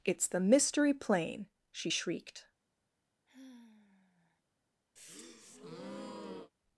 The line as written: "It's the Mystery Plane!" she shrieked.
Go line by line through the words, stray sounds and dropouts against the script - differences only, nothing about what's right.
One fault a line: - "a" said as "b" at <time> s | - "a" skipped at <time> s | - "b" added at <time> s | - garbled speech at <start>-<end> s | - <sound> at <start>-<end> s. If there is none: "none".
- sigh at 3.3-4.4 s
- breath at 5.0-6.5 s